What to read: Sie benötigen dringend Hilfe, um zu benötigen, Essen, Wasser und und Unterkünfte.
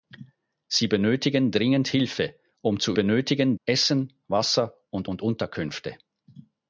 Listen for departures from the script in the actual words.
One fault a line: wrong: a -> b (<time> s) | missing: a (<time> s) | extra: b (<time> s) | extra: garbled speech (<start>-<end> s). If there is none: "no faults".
no faults